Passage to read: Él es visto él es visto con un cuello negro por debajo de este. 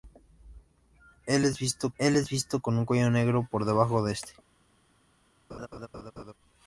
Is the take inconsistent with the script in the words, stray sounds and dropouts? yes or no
yes